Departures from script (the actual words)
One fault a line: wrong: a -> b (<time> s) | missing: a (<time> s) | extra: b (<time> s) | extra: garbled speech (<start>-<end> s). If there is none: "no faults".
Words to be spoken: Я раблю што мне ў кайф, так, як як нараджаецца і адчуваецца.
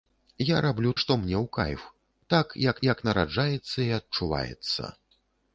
no faults